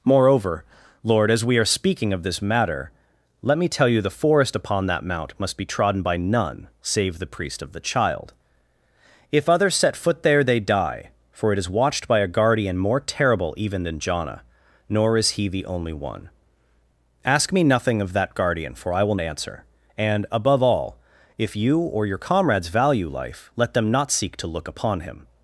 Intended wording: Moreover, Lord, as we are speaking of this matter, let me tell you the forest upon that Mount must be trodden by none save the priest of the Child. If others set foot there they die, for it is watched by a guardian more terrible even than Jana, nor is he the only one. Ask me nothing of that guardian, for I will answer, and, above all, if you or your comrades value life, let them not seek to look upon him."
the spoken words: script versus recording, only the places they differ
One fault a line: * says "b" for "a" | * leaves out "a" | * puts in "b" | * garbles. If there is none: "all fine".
all fine